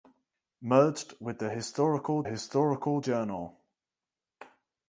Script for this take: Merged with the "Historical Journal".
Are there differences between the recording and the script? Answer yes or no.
yes